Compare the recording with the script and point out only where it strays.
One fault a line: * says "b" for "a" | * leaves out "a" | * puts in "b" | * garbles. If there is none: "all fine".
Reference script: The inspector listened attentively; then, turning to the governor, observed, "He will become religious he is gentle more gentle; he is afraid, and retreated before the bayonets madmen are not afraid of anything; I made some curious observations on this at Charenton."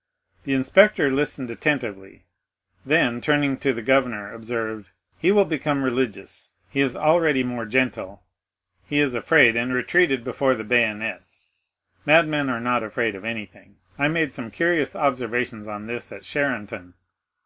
* says "already" for "gentle"